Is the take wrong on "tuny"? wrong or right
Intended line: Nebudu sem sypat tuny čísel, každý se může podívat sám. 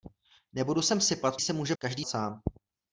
wrong